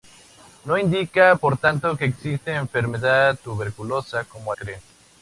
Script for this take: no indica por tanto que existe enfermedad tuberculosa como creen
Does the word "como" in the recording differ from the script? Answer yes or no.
no